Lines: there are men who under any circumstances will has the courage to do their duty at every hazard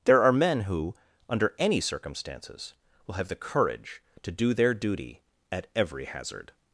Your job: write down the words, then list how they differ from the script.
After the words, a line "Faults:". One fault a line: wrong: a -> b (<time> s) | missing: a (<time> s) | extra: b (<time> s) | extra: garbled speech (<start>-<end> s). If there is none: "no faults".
there are men who under any circumstances will have the courage to do their duty at every hazard
Faults:
wrong: has -> have (3.1 s)